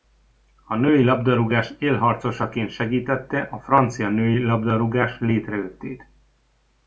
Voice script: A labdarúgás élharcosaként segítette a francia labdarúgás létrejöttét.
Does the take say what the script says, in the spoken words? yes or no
no